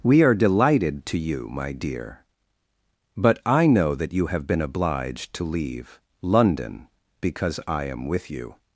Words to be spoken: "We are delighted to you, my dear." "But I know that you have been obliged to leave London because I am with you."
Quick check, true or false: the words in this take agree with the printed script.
true